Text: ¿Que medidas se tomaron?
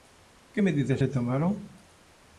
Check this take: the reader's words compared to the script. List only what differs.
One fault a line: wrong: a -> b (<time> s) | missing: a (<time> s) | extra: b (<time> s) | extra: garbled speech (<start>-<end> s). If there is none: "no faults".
no faults